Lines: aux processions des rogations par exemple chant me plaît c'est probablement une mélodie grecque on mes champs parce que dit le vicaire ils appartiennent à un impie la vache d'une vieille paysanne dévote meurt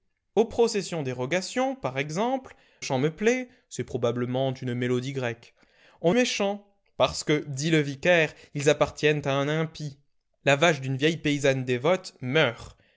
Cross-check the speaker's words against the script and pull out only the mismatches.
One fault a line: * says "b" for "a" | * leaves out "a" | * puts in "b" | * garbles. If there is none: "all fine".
all fine